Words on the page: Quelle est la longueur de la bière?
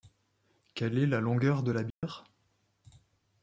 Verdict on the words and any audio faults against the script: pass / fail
fail